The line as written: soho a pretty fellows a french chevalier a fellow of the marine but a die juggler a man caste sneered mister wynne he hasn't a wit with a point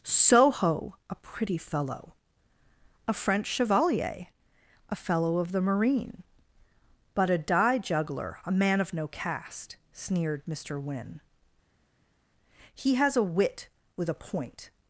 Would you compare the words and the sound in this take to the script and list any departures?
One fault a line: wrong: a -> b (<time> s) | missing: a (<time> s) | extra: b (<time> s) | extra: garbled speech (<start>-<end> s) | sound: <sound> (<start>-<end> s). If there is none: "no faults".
wrong: fellows -> fellow (1.6 s)
extra: of no (8.8 s)
wrong: hasn't -> has (13.0 s)